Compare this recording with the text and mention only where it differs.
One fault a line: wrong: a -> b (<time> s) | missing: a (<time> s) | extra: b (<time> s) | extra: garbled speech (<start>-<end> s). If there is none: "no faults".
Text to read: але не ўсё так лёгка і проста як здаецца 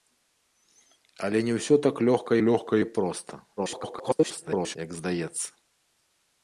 extra: лёгка (2.5 s)
extra: garbled speech (3.6-4.8 s)